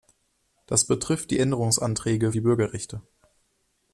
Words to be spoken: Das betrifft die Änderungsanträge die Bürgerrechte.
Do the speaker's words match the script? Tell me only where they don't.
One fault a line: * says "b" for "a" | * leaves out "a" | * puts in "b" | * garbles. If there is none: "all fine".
all fine